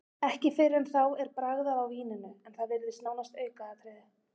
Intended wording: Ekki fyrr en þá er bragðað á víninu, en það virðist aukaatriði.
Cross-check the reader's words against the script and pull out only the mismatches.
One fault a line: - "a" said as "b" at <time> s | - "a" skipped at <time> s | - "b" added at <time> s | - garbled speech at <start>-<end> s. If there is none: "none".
- "nánast" added at 3.1 s